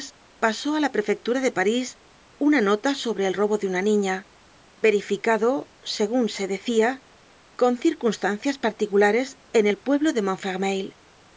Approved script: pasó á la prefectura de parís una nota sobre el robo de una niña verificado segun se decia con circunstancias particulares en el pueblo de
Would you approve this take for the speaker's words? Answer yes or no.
yes